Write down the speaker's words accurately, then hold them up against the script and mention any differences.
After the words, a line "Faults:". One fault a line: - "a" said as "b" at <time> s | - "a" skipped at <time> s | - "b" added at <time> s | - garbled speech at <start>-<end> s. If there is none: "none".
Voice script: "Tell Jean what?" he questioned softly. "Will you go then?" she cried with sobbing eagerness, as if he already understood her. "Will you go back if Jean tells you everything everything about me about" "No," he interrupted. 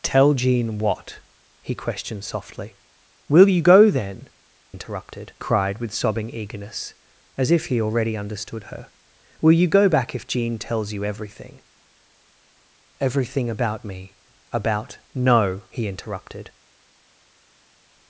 "Tell Jean what?" he questioned softly. "Will you go then?" interrupted cried with sobbing eagerness, as if he already understood her. "Will you go back if Jean tells you everything everything about me about" "No," he interrupted.
Faults:
- "she" said as "interrupted" at 4.7 s